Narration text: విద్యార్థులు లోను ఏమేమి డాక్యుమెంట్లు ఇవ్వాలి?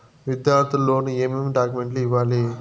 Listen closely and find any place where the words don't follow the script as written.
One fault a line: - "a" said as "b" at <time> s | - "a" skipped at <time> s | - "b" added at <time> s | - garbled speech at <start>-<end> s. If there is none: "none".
none